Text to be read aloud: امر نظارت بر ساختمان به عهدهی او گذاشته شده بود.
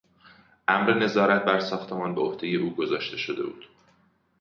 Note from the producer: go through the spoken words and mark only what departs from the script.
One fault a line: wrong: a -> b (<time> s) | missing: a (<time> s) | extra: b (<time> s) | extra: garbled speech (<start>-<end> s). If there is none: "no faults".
no faults